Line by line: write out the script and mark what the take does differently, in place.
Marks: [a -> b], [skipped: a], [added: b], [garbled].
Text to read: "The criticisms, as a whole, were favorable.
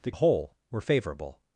"The [skipped: criticisms, as] a whole, were favorable.